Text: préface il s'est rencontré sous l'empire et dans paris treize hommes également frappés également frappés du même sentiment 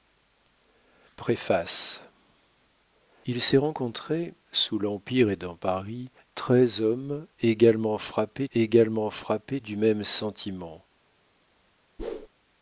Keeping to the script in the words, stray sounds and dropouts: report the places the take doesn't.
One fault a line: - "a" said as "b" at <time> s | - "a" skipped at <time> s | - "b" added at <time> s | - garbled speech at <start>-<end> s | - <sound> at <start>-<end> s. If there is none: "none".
- whoosh at 12.0-12.3 s